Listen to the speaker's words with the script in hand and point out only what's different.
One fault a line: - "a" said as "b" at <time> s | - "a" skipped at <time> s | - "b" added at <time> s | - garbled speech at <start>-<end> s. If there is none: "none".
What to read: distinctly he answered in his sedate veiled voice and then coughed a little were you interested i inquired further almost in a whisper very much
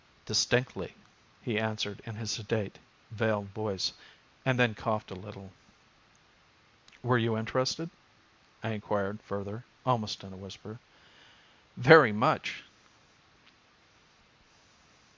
none